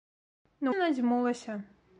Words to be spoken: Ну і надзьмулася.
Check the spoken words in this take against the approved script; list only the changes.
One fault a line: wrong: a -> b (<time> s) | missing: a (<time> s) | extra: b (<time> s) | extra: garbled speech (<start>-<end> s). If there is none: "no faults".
no faults